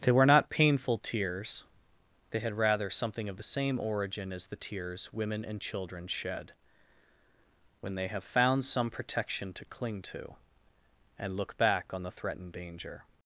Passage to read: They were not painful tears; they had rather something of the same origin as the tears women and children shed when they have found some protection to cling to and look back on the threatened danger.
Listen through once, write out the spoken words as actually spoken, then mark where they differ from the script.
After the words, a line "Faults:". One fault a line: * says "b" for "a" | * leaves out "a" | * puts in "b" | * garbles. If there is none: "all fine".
They were not painful tears; they had rather something of the same origin as the tears women and children shed when they have found some protection to cling to and look back on the threatened danger.
Faults:
all fine